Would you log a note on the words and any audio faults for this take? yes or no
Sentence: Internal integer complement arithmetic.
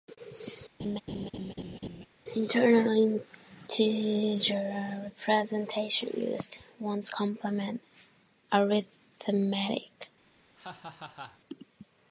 yes